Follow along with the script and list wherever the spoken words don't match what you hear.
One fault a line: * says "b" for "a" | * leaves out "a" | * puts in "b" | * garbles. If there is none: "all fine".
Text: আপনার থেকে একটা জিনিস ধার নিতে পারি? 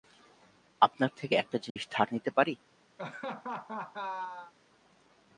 all fine